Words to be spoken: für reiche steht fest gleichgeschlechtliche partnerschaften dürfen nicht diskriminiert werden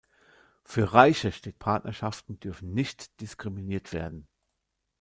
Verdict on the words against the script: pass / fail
fail